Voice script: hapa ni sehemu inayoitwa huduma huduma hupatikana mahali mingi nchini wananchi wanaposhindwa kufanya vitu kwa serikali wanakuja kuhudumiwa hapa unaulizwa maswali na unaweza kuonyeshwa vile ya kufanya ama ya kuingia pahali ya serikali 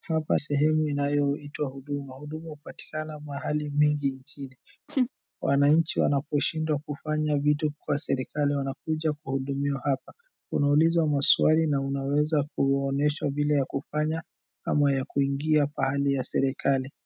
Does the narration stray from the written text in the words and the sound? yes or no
yes